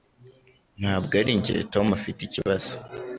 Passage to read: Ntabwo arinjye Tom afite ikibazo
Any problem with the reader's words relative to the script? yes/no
no